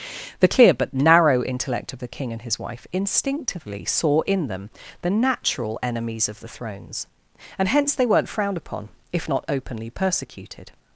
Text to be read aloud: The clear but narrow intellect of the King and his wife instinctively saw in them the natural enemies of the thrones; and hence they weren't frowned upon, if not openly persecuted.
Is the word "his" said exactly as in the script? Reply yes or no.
yes